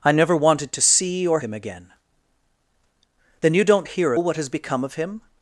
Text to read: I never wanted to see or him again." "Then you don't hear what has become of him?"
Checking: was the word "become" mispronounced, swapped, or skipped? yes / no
no